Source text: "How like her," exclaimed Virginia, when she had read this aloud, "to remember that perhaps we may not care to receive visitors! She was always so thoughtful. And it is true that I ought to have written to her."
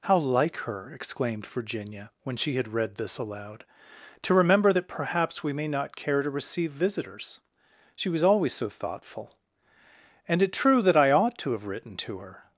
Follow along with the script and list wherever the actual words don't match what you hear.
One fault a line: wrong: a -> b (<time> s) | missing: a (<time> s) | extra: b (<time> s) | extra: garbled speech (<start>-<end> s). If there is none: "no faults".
missing: is (10.5 s)